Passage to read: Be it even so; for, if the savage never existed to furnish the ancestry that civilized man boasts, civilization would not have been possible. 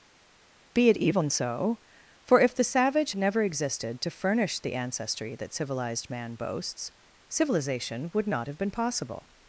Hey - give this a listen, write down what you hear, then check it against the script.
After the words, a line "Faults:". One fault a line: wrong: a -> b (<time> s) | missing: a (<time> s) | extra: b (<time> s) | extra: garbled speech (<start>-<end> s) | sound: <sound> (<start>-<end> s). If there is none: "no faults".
Be it even so; for, if the savage never existed to furnish the ancestry that civilized man boasts, civilization would not have been possible.
Faults:
no faults